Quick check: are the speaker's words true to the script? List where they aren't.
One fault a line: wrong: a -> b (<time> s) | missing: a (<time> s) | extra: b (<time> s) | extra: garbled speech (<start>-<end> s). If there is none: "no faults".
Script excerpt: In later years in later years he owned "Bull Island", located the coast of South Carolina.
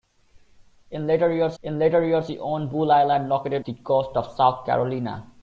no faults